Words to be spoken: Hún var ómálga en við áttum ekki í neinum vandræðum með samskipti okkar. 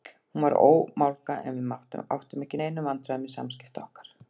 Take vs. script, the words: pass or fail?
pass